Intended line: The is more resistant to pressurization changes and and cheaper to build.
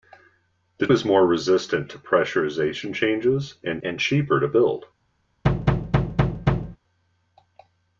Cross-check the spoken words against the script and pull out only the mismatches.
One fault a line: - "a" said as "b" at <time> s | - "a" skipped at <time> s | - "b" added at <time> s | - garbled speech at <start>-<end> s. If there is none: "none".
none